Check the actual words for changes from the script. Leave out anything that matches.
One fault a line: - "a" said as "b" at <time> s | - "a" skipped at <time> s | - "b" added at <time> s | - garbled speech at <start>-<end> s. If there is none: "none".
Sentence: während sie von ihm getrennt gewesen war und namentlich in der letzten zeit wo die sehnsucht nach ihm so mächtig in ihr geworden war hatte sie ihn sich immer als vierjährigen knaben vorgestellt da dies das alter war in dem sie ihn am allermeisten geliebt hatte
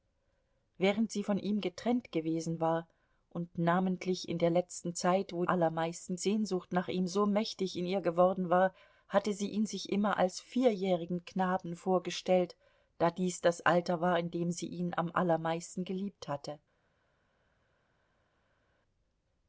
- "die" said as "allermeisten" at 5.4 s